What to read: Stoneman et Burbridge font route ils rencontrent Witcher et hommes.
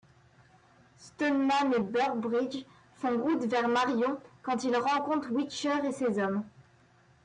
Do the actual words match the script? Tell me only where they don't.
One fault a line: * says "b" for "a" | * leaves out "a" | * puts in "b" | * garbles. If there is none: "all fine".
* puts in "vers Marion quand"
* puts in "ses"